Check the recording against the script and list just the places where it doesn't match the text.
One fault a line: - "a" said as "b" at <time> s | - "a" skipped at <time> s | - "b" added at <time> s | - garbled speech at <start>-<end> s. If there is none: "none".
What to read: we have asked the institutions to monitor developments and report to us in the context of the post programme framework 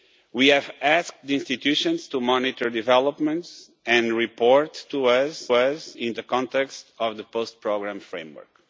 - "us" added at 5.5 s